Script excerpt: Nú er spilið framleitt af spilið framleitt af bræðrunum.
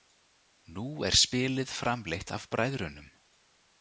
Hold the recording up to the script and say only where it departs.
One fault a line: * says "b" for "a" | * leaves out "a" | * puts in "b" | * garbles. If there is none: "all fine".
* leaves out "spilið framleitt af"